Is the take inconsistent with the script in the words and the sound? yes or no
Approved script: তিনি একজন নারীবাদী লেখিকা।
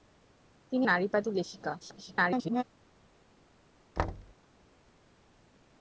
yes